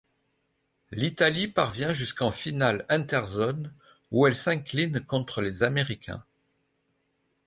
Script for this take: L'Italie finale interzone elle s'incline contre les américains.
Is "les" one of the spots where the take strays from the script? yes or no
no